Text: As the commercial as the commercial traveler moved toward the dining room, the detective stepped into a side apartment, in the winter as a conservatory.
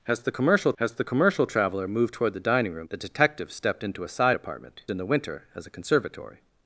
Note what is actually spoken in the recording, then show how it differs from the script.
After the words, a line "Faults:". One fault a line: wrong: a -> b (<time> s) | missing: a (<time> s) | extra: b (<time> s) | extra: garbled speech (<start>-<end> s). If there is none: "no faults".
As the commercial as the commercial traveler moved toward the dining room, the detective stepped into a side apartment, in the winter as a conservatory.
Faults:
no faults